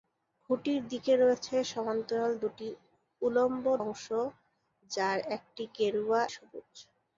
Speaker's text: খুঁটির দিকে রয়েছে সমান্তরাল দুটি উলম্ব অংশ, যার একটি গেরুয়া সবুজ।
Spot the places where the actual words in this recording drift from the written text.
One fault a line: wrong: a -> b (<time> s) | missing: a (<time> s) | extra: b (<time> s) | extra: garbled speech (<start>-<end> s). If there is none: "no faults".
no faults